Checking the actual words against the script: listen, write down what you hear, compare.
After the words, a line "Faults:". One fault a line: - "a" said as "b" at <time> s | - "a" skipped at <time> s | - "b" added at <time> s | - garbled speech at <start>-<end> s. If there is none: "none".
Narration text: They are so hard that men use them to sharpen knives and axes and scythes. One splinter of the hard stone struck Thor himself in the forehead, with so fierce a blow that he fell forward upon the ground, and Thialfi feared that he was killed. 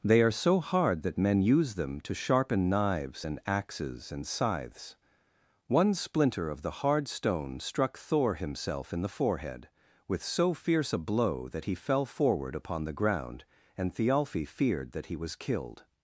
They are so hard that men use them to sharpen knives and axes and scythes. One splinter of the hard stone struck Thor himself in the forehead, with so fierce a blow that he fell forward upon the ground, and Thialfi feared that he was killed.
Faults:
none